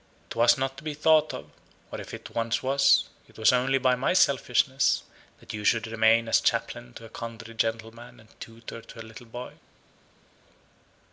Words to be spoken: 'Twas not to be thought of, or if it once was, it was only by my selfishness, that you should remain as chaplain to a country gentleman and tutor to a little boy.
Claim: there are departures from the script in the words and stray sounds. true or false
false